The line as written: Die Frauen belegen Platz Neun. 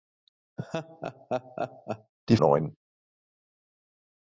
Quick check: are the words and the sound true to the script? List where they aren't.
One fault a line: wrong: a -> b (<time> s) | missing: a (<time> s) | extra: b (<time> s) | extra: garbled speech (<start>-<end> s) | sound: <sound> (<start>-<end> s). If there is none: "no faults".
sound: laugh (0.6-2.1 s)
missing: Frauen belegen Platz (2.4 s)